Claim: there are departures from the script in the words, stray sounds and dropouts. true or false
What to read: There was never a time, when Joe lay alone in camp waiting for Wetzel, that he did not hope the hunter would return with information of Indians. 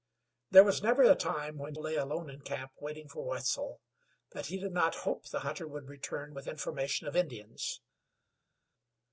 true